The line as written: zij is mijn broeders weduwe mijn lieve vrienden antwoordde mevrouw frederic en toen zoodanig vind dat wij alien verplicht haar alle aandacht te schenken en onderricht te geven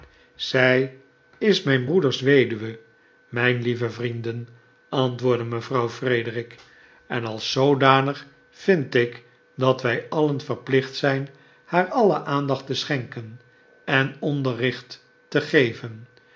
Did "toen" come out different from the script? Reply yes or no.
yes